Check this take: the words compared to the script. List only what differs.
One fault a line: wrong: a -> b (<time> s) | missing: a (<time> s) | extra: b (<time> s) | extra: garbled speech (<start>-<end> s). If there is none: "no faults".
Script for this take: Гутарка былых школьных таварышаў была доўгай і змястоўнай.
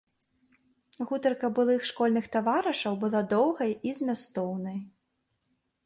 no faults